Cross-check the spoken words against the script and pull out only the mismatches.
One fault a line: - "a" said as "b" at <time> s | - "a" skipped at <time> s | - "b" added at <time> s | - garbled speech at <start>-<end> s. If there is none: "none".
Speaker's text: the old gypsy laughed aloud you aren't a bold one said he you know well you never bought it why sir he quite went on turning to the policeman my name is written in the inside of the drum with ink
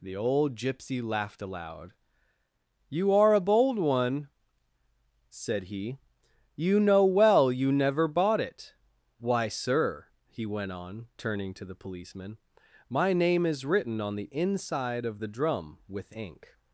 - "aren't" said as "are" at 3.1 s
- "quite" skipped at 10.4 s
- "in" said as "on" at 14.0 s